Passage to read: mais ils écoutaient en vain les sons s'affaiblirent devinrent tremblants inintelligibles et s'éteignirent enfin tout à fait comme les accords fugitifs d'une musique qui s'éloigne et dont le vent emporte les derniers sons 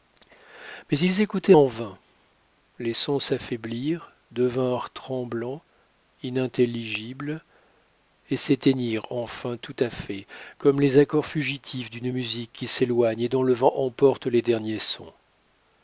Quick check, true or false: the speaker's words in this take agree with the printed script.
true